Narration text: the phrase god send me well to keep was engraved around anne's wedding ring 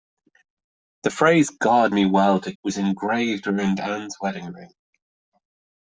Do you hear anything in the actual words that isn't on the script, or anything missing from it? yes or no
yes